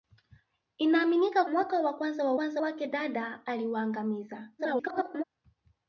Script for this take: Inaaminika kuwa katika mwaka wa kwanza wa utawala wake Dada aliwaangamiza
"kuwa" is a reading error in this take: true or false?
true